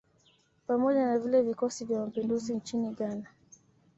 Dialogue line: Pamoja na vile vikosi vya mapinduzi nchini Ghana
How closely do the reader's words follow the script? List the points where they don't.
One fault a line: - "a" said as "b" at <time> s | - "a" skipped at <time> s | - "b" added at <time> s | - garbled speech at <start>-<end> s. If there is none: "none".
none